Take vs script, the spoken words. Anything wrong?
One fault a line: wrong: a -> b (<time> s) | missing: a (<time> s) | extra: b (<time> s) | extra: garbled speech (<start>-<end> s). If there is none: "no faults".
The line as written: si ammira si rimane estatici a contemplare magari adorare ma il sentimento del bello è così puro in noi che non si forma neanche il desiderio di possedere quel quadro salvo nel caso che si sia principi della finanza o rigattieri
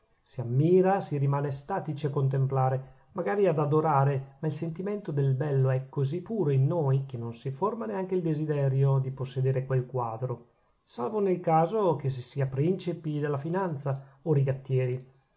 extra: ad (3.5 s)